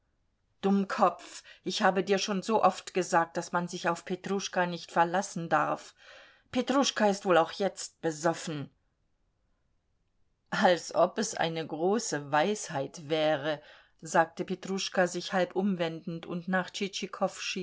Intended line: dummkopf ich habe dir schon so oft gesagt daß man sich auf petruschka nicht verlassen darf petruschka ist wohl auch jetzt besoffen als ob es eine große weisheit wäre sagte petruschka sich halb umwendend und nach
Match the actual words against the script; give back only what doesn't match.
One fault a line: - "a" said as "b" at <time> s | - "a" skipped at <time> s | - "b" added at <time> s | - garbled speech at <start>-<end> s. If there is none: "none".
none